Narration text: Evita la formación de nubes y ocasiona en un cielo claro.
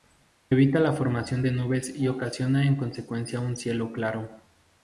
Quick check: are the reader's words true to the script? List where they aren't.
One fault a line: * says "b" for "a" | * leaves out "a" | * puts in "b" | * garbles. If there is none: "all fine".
* puts in "consecuencia"